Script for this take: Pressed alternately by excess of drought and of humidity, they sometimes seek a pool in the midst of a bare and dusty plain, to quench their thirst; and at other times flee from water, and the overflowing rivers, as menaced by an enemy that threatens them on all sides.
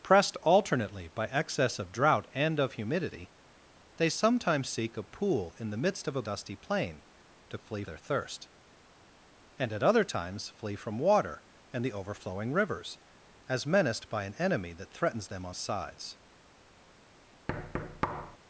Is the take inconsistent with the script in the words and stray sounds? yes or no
yes